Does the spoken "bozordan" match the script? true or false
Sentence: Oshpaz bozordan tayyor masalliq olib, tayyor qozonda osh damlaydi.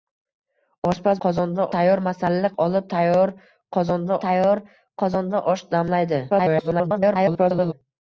false